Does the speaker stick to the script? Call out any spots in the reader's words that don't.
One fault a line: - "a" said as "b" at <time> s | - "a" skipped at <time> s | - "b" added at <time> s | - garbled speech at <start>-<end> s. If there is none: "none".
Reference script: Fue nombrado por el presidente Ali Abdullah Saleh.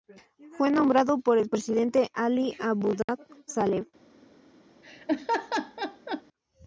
none